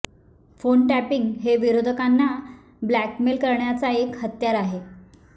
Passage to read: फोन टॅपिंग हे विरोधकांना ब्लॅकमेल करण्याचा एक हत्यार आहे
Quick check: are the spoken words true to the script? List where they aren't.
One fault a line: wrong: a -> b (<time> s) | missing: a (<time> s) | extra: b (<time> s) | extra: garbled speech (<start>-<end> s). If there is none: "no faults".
no faults